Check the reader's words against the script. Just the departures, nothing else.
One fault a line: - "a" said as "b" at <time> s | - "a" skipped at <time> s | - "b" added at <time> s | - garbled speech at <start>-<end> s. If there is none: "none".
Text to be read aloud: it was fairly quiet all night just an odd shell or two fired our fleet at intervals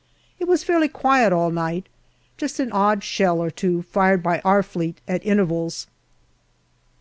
- "by" added at 4.2 s